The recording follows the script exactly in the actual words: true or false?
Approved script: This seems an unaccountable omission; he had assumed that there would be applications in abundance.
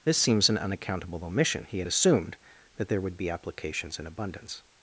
true